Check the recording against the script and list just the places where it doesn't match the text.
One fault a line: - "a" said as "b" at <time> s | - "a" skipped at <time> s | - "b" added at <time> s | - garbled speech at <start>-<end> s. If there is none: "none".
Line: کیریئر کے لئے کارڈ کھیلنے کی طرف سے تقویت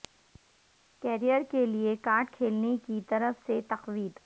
none